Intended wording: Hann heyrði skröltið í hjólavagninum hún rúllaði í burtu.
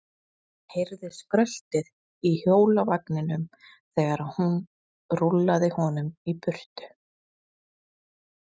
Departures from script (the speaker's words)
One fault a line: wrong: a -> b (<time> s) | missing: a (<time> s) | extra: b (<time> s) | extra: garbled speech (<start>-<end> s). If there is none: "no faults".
extra: þegar (3.6 s)
extra: honum (5.8 s)